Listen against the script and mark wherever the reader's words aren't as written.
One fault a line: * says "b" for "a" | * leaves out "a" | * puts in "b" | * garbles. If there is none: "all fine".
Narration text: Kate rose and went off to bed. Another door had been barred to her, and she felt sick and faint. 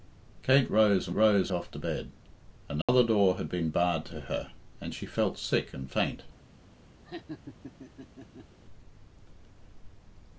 * says "rose" for "went"